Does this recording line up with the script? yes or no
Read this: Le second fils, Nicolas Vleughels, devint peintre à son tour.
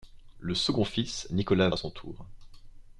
no